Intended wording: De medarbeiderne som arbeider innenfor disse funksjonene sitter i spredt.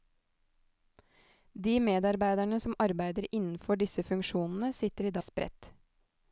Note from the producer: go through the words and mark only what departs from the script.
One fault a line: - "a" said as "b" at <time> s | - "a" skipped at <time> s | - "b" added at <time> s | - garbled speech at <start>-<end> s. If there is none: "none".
none